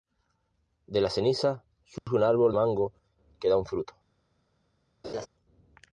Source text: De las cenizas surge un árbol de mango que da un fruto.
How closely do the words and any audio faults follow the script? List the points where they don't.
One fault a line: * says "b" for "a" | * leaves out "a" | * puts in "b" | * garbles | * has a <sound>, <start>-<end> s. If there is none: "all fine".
* has a dropout, 2.0-2.1 s
* leaves out "de"
* has a laugh, 5.0-5.3 s